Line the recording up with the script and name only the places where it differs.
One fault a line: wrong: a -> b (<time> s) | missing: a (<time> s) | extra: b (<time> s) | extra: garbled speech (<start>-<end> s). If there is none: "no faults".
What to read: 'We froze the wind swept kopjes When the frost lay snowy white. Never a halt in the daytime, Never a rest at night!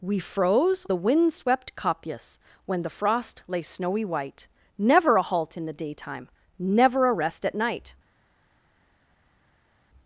no faults